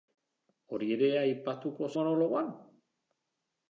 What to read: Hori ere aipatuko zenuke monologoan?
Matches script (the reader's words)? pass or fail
fail